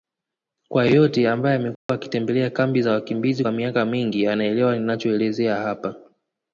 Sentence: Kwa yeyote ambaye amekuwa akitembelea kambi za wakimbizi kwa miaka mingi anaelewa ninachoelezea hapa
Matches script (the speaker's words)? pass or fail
pass